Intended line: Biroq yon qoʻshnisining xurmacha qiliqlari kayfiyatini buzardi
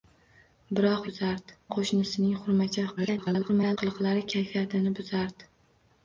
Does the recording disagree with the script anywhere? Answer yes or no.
yes